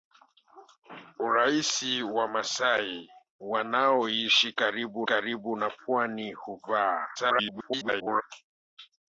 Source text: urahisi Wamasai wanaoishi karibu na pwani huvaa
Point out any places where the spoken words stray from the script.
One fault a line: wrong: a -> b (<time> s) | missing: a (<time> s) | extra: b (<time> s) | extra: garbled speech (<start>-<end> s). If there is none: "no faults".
extra: karibu (5.0 s)
extra: garbled speech (7.2-8.2 s)